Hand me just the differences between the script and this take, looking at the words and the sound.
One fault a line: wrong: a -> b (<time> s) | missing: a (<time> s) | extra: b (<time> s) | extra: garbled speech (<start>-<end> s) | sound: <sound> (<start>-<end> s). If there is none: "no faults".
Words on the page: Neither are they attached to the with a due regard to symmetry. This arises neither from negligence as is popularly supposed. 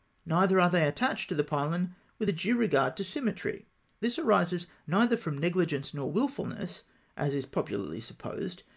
extra: pylon (1.4 s)
extra: nor wilfulness (5.9 s)